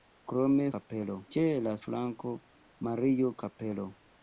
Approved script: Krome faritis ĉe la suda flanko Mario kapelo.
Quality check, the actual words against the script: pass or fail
fail